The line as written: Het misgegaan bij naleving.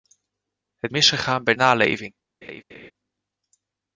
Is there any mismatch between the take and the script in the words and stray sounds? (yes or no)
yes